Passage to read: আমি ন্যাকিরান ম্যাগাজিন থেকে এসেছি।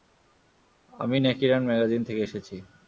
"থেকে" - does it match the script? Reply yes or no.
yes